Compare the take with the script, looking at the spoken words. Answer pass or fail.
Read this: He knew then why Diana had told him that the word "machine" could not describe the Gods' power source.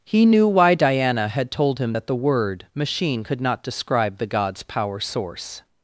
fail